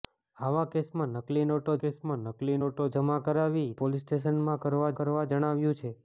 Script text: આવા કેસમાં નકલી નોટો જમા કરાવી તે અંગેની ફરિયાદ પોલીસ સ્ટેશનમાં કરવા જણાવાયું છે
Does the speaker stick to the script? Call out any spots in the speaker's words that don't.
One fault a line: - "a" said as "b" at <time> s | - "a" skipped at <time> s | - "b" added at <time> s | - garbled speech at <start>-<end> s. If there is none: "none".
- "જમા કરાવી તે અંગેની ફરિયાદ" said as "કેસમાં નકલી નોટો જમા કરાવી" at 1.8 s
- "કરવા" added at 5.0 s